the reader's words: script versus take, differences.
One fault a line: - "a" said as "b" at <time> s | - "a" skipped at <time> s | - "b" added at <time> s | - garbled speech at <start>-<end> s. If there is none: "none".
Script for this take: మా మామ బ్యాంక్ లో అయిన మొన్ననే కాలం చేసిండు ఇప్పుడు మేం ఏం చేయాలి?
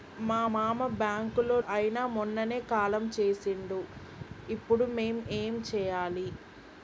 none